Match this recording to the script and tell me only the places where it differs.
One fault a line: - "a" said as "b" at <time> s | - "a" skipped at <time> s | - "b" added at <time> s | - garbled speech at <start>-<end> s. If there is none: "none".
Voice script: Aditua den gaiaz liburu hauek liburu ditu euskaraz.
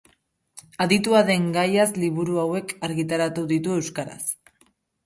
- "liburu" said as "argitaratu" at 2.9 s